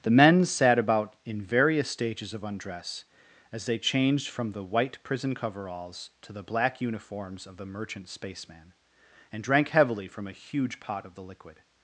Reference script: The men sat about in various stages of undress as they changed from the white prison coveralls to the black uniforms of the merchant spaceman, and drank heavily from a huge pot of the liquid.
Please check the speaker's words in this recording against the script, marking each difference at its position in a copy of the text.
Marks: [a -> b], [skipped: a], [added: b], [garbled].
The men sat about in various stages of undress as they changed from the white prison coveralls to the black uniforms of the merchant spaceman, and drank heavily from a huge pot of the liquid.